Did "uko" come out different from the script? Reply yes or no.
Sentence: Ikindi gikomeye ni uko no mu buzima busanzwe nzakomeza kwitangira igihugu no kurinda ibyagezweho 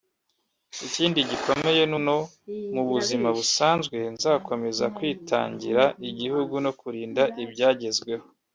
yes